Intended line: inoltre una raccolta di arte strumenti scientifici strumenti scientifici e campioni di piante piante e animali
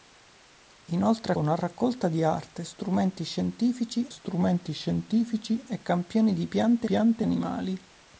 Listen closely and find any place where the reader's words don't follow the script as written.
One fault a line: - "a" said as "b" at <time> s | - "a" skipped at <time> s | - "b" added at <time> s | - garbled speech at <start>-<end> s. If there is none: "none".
none